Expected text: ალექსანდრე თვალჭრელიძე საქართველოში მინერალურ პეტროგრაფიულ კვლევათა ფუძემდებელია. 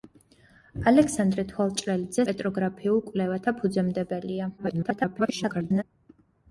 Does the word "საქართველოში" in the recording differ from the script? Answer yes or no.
yes